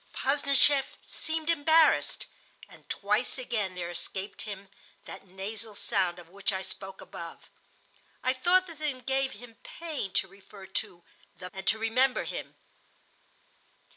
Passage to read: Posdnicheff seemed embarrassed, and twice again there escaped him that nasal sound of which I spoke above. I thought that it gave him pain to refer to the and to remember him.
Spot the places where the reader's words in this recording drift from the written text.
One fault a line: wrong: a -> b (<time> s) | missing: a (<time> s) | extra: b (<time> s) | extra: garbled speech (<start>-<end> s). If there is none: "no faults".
no faults